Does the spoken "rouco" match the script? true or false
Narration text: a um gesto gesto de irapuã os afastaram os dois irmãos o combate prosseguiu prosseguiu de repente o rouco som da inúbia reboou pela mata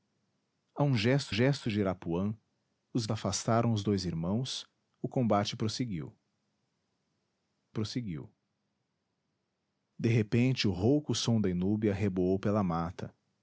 true